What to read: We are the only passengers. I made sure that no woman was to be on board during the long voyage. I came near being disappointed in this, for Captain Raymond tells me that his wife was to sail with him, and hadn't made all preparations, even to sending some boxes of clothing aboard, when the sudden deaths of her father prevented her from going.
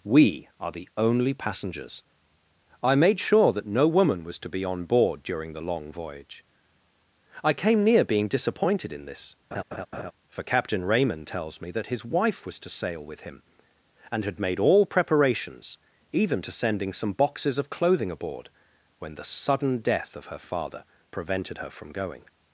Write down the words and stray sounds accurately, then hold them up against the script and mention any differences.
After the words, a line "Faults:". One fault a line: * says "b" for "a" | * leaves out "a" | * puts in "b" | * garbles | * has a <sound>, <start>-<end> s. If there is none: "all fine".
We are the only passengers. I made sure that no woman was to be on board during the long voyage. I came near being disappointed in this, for Captain Raymond tells me that his wife was to sail with him, and had made all preparations, even to sending some boxes of clothing aboard, when the sudden death of her father prevented her from going.
Faults:
* has a laugh, 9.5-10.1 s
* says "had" for "hadn't"
* says "death" for "deaths"